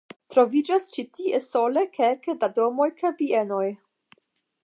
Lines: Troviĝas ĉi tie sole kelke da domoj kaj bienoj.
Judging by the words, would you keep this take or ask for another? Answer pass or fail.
pass